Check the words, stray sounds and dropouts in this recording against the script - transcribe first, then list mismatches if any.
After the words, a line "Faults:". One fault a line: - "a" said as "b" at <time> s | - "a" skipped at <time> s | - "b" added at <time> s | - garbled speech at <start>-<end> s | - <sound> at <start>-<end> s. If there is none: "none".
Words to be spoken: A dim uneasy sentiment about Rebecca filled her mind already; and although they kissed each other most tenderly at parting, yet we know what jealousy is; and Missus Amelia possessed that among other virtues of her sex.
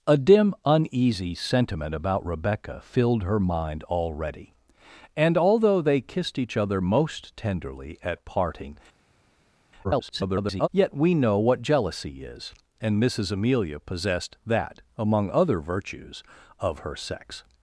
A dim uneasy sentiment about Rebecca filled her mind already; and although they kissed each other most tenderly at parting, [garbled] yet we know what jealousy is; and Missus Amelia possessed that among other virtues of her sex.
Faults:
- garbled speech at 9.8-10.7 s